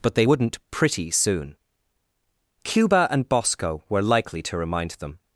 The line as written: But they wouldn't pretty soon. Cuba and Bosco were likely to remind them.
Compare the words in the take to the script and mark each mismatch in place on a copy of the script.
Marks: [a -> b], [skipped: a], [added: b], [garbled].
But they wouldn't pretty soon. Cuba and Bosco were likely to remind them.